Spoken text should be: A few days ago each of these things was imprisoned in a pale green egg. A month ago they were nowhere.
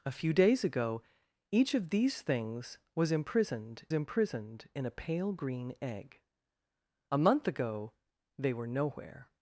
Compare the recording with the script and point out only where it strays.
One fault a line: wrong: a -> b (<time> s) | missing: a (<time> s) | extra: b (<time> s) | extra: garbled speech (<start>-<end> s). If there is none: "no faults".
extra: imprisoned (3.9 s)